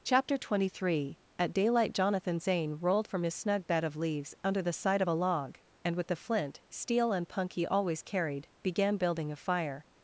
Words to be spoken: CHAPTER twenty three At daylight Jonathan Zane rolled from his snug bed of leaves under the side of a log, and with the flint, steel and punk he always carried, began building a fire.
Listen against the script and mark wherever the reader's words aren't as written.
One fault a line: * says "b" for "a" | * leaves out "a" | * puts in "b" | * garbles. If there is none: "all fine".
all fine